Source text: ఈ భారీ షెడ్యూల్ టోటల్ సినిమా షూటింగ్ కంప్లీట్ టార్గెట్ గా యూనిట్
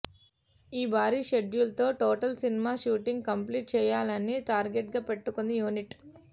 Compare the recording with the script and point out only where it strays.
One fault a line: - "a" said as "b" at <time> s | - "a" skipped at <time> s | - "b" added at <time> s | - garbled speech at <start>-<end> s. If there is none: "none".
- "తో" added at 1.8 s
- "చేయాలని" added at 3.8 s
- "పెట్టుకుంది" added at 5.1 s